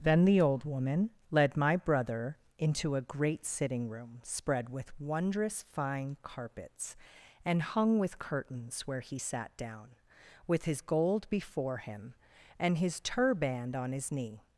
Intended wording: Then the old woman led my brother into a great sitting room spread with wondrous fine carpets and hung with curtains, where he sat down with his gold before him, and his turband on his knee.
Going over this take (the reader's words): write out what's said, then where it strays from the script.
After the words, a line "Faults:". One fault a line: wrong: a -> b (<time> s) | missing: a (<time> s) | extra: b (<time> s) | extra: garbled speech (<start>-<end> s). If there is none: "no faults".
Then the old woman led my brother into a great sitting room spread with wondrous fine carpets and hung with curtains, where he sat down with his gold before him, and his turband on his knee.
Faults:
no faults